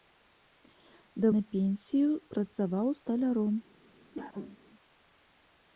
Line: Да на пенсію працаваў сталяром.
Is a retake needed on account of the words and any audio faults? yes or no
yes